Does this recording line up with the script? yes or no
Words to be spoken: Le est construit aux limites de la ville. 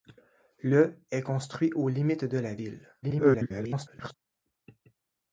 no